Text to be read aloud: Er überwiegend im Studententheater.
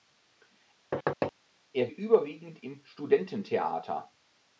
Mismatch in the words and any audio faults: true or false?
true